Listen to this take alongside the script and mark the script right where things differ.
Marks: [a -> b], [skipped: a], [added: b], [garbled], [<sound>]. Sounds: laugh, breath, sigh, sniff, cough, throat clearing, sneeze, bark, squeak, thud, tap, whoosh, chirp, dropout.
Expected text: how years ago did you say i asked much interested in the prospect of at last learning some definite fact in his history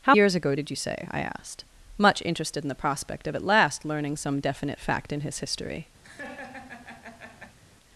how years ago did you say i asked much interested in the prospect of at last learning some definite fact in his history [laugh]